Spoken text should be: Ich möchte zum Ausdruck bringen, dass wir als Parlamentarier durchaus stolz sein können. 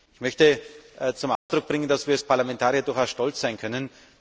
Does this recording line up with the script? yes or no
yes